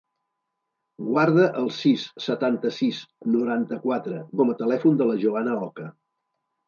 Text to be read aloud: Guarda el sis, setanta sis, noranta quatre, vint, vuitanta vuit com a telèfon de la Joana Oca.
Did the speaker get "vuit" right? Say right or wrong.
wrong